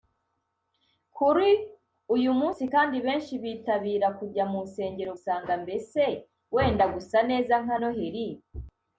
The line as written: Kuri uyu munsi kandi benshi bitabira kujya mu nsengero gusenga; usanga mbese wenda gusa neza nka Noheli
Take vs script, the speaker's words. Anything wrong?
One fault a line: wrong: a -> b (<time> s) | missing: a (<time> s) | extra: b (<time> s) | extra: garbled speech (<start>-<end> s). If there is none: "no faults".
missing: gusenga (5.1 s)